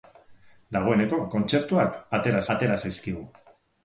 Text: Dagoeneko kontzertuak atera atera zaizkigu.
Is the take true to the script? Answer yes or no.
yes